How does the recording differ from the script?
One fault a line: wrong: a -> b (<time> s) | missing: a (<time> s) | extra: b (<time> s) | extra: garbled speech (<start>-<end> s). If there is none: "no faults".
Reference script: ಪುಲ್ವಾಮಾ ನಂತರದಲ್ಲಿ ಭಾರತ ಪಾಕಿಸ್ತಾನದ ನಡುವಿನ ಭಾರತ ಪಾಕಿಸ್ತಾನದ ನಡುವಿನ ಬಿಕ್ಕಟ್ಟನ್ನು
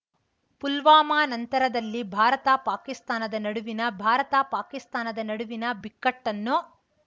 no faults